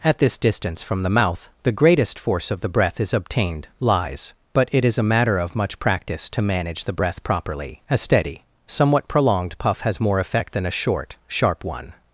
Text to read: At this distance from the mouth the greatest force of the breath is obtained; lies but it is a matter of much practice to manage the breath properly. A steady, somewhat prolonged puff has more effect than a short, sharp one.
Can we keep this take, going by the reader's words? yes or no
yes